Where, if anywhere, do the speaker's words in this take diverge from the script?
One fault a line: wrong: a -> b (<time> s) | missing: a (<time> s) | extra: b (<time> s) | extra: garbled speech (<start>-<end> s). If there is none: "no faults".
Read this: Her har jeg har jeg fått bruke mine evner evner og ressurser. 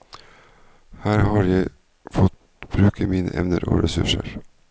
missing: har jeg (1.7 s)
missing: evner (3.6 s)